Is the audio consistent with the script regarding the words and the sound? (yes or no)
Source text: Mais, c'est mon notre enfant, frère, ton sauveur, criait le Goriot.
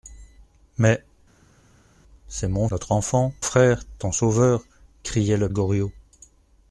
yes